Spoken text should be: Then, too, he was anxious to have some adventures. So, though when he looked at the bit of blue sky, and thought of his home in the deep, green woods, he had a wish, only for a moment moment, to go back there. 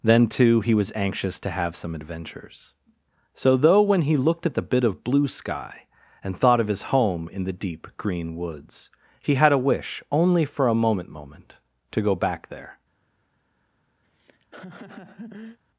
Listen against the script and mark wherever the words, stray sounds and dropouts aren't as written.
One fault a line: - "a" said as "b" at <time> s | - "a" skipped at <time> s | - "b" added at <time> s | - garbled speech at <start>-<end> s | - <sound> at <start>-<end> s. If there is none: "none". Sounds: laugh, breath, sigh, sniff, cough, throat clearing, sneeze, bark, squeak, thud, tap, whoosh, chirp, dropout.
- laugh at 14.0-15.6 s